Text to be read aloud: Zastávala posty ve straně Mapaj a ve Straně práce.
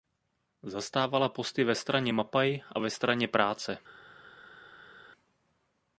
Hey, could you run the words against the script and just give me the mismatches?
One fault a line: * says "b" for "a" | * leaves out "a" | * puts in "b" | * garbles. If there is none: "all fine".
all fine